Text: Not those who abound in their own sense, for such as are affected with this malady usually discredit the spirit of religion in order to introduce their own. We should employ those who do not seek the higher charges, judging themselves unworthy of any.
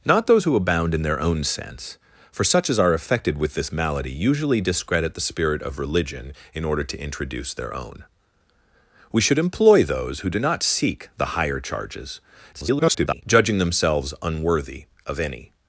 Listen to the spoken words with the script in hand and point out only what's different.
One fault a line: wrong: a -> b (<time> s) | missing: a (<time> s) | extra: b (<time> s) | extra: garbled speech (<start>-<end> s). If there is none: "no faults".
extra: garbled speech (12.5-13.2 s)